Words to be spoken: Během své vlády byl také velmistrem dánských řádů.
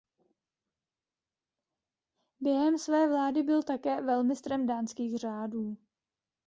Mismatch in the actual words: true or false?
false